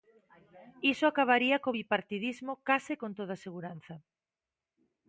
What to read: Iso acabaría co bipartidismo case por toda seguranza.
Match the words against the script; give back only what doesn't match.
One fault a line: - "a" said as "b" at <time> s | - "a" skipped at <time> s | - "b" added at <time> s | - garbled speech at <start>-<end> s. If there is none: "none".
- "por" said as "con" at 3.0 s